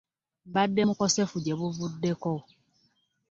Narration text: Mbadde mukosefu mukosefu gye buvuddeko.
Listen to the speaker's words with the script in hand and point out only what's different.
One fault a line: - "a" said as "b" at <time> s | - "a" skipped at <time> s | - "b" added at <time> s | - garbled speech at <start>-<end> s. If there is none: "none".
- "mukosefu" skipped at 1.4 s